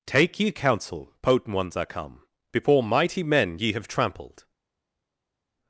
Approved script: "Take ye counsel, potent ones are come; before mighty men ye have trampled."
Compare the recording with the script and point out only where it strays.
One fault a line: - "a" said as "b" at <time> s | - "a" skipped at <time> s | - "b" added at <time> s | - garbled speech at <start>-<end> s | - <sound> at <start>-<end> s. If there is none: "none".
none